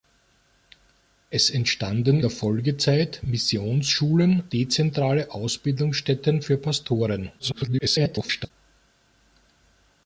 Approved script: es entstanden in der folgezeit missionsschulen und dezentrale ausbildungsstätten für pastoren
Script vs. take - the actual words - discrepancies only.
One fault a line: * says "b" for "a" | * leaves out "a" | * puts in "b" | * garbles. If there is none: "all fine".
* leaves out "in"
* leaves out "und"
* garbles